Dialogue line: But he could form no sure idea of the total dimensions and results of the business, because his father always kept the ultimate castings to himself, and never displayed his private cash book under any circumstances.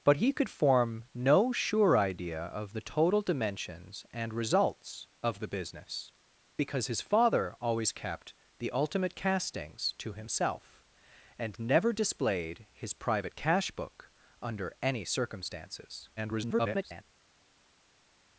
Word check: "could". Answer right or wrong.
right